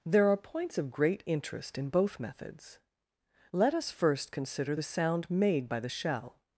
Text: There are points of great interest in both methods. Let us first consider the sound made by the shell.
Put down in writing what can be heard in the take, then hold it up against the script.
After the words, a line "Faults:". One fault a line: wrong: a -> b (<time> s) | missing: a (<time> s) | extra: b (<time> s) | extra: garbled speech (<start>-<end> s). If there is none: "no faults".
There are points of great interest in both methods. Let us first consider the sound made by the shell.
Faults:
no faults